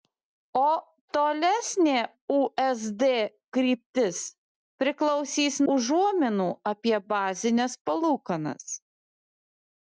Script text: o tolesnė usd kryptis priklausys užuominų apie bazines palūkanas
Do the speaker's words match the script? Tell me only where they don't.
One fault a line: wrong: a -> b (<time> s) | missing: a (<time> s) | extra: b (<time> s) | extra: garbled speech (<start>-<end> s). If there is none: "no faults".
no faults